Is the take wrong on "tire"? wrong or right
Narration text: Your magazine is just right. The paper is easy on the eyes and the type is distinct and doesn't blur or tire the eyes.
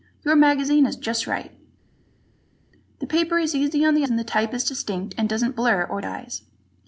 wrong